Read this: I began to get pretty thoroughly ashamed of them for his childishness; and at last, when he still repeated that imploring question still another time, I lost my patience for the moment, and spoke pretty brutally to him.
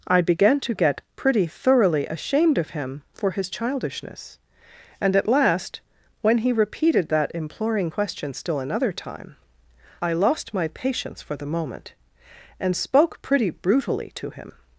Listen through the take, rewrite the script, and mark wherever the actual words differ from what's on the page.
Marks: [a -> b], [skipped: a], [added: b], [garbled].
I began to get pretty thoroughly ashamed of [them -> him] for his childishness; and at last, when he [skipped: still] repeated that imploring question still another time, I lost my patience for the moment, and spoke pretty brutally to him.